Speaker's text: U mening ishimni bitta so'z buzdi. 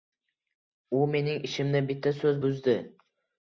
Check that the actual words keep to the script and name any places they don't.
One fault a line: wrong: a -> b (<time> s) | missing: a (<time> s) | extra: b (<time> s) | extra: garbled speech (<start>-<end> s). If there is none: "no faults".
no faults